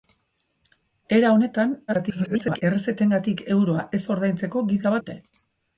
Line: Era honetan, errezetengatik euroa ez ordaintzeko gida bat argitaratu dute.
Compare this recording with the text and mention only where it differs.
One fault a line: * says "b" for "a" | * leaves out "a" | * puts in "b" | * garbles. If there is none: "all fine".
* garbles
* leaves out "bat argitaratu"